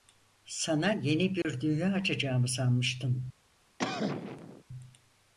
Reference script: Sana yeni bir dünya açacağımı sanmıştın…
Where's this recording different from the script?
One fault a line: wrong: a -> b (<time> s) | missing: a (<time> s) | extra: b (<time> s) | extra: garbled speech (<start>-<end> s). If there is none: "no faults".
no faults